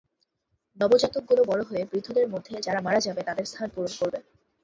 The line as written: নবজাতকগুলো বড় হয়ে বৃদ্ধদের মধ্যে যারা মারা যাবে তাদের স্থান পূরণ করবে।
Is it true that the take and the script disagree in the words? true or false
false